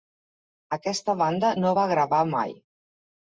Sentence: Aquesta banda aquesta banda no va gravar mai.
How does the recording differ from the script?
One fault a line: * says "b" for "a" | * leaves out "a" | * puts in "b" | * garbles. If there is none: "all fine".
* leaves out "aquesta banda"